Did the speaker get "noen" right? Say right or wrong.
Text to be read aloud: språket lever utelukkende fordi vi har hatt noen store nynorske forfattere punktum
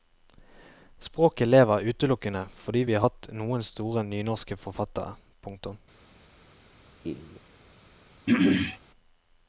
right